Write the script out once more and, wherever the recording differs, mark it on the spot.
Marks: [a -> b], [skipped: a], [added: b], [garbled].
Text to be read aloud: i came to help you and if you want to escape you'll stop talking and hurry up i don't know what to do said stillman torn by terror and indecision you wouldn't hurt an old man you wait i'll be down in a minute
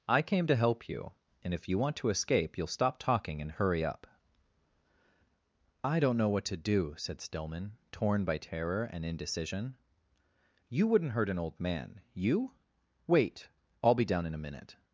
i came to help you and if you want to escape you'll stop talking and hurry up i don't know what to do said stillman torn by terror and indecision you wouldn't hurt an old man you wait i'll be down in a minute